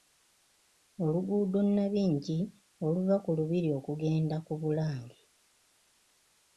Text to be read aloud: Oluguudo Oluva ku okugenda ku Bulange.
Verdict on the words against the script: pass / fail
fail